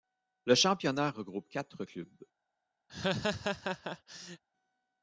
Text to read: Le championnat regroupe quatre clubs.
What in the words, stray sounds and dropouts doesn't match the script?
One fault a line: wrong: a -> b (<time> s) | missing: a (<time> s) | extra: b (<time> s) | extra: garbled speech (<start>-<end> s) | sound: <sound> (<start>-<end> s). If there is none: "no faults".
sound: laugh (2.9-4.4 s)